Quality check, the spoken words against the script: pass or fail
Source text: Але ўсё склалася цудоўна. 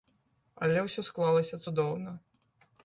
pass